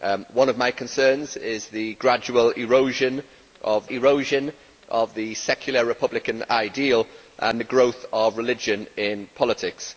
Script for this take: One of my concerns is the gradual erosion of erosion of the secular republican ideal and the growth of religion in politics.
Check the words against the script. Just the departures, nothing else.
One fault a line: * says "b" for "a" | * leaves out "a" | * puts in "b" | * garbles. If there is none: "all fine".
all fine